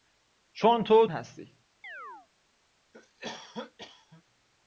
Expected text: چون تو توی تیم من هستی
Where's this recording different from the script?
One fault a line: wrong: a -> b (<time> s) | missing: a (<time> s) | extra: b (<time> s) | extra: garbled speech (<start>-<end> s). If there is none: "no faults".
missing: توی تیم من (1.1 s)